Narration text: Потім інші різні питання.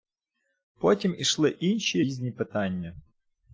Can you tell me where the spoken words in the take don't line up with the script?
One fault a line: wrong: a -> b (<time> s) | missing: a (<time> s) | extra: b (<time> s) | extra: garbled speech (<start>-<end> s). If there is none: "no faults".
extra: ішли (1.2 s)